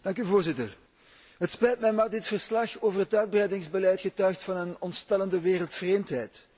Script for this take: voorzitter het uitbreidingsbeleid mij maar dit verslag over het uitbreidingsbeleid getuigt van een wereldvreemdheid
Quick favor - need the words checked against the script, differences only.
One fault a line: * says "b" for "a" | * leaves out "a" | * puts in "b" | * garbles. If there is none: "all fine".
* says "spijt" for "uitbreidingsbeleid"
* puts in "ontstellende"